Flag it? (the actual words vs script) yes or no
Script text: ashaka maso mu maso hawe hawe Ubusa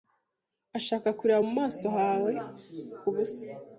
yes